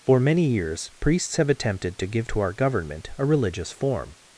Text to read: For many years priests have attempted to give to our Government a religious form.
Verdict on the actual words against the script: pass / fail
pass